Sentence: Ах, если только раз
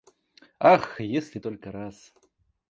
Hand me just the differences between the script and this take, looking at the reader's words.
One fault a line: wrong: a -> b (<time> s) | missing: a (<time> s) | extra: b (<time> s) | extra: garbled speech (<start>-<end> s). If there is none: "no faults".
no faults